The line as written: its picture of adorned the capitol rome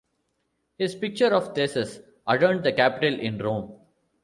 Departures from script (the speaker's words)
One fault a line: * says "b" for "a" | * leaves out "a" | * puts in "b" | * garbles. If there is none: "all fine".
* says "his" for "its"
* puts in "theseus"
* puts in "in"